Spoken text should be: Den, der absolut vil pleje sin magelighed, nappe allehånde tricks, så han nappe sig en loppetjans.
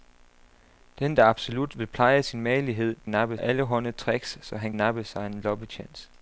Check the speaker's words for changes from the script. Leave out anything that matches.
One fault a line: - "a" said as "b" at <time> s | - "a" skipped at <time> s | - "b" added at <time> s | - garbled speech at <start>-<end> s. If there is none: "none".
none